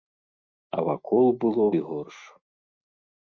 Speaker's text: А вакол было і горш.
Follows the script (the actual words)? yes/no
yes